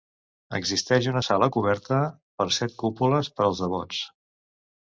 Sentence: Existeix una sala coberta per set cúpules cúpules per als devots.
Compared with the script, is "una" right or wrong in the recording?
right